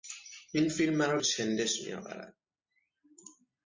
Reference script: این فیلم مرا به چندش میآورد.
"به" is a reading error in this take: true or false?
true